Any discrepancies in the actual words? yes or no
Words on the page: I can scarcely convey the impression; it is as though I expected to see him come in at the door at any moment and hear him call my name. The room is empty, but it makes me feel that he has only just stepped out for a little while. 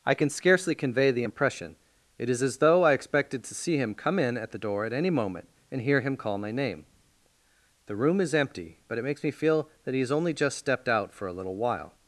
no